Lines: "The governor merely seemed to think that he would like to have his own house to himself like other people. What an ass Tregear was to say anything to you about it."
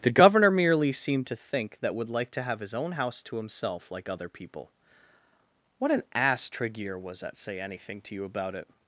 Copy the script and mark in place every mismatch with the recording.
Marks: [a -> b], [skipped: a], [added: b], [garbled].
"The governor merely seemed to think that [skipped: he] would like to have his own house to himself like other people. What an ass Tregear was [to -> at] say anything to you about it."